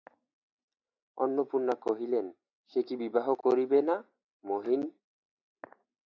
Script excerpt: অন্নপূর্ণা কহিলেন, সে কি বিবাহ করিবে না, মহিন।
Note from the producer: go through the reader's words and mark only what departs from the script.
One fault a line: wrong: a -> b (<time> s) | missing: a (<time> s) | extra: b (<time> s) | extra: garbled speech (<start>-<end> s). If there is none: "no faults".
no faults